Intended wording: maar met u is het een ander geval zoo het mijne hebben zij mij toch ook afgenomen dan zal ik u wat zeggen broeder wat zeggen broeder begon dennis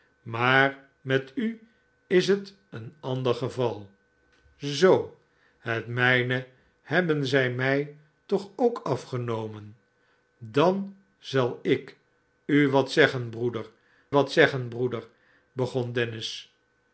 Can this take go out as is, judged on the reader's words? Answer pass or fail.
pass